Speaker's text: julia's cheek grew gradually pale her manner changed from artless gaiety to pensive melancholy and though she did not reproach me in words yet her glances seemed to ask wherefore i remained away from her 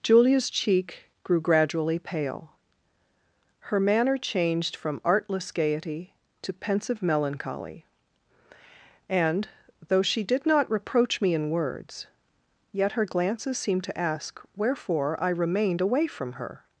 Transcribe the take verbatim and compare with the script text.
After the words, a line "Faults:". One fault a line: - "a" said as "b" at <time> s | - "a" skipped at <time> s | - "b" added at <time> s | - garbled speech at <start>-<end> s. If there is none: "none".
julia's cheek grew gradually pale her manner changed from artless gaiety to pensive melancholy and though she did not reproach me in words yet her glances seemed to ask wherefore i remained away from her
Faults:
none